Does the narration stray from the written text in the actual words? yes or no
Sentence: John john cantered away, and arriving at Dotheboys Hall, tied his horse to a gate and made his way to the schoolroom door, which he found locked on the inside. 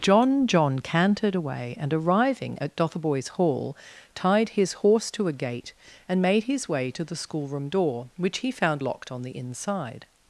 no